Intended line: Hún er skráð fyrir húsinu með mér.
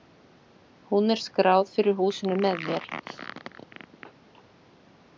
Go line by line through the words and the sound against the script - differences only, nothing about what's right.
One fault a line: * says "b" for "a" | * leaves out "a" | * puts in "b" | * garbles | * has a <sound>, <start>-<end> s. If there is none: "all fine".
all fine